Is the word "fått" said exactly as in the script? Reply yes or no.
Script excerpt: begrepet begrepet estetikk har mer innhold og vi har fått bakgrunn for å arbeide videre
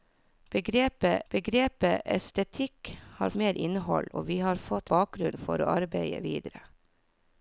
yes